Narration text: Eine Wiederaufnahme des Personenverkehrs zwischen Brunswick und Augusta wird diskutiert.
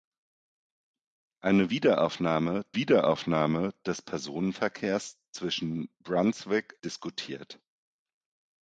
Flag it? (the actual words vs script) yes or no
yes